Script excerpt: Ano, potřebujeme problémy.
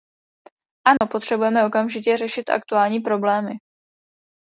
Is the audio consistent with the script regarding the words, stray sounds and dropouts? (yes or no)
no